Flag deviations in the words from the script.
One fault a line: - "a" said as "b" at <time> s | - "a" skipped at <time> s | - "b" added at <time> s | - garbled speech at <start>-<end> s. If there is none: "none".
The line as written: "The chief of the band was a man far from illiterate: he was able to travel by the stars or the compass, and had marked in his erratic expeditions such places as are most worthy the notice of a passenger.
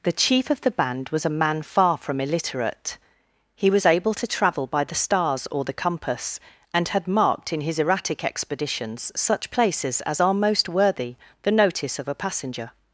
none